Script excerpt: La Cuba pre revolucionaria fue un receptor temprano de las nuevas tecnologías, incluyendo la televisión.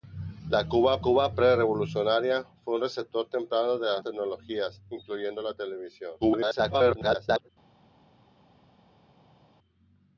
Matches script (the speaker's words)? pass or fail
fail